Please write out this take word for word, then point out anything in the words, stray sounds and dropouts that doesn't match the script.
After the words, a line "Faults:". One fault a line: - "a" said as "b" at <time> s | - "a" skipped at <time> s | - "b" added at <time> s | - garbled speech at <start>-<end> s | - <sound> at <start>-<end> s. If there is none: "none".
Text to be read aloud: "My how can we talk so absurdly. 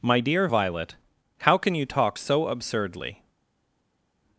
"My dear Violet, how can you talk so absurdly.
Faults:
- "dear Violet" added at 0.2 s
- "we" said as "you" at 1.8 s